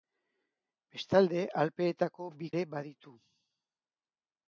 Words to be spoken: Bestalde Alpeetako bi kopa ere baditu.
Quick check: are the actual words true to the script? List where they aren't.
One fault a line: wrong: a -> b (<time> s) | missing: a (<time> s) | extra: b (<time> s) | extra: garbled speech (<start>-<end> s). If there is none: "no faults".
missing: kopa (2.5 s)